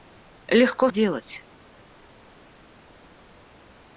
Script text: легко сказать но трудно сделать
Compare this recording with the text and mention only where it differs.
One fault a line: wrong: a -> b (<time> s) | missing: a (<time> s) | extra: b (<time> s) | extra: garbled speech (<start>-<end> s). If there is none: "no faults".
missing: сказать но трудно (0.9 s)